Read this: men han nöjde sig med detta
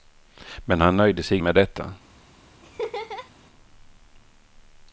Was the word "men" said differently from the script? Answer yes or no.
no